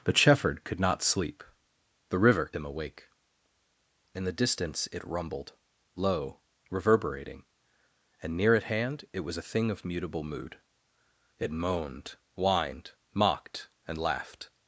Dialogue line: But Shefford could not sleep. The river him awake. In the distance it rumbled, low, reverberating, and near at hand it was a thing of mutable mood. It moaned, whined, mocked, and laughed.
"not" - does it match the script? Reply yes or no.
yes